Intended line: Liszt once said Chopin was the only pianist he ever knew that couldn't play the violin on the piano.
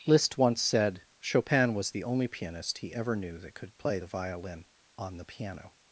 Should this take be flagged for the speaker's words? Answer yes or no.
yes